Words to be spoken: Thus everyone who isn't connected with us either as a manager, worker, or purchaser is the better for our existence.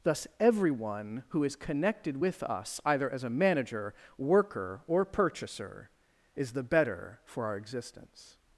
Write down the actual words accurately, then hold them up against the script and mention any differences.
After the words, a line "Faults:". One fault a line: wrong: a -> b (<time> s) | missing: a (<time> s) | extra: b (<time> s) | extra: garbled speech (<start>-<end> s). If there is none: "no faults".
Thus everyone who is connected with us either as a manager, worker, or purchaser is the better for our existence.
Faults:
wrong: isn't -> is (1.4 s)